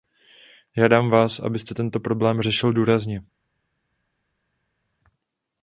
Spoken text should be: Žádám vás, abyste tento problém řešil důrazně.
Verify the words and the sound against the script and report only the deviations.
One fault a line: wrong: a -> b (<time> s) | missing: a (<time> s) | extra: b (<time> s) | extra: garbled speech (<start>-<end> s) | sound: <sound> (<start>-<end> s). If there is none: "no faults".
no faults